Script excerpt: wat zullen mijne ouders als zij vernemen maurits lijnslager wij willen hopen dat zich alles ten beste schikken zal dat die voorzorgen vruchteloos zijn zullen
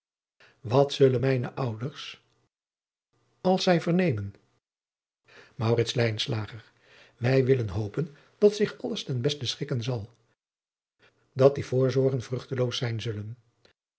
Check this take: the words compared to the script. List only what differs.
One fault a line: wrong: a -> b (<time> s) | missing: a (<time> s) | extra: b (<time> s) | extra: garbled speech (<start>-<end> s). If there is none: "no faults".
no faults